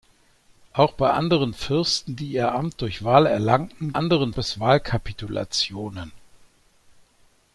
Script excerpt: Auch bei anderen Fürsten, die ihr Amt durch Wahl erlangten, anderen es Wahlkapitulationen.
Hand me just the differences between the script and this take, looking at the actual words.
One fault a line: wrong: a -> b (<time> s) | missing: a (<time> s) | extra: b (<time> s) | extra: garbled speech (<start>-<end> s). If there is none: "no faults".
no faults